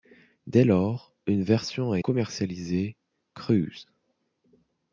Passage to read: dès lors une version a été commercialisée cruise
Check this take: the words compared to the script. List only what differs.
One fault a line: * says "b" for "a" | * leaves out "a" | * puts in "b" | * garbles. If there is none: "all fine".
* leaves out "été"